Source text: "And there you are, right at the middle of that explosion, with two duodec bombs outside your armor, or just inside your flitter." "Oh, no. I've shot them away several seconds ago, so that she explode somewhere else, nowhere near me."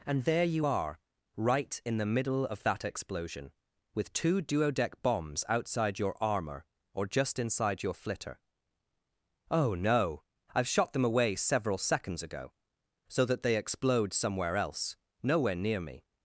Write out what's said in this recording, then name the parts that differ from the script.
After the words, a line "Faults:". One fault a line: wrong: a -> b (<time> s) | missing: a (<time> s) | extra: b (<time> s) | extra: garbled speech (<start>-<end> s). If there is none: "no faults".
"And there you are, right in the middle of that explosion, with two duodec bombs outside your armor, or just inside your flitter." "Oh, no. I've shot them away several seconds ago, so that they explode somewhere else, nowhere near me."
Faults:
wrong: at -> in (1.8 s)
wrong: she -> they (13.4 s)